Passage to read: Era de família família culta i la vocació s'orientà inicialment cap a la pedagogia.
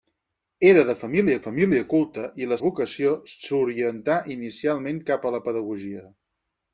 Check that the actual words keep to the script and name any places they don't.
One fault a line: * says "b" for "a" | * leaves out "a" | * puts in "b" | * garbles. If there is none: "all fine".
all fine